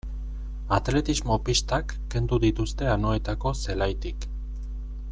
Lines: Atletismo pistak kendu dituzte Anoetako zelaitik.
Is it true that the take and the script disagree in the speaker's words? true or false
false